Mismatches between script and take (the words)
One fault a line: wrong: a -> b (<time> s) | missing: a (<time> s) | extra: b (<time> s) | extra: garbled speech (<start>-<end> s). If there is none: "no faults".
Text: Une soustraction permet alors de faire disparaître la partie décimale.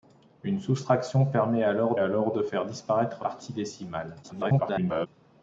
extra: alors (2.0 s)
missing: la (3.2 s)
extra: garbled speech (4.2-5.1 s)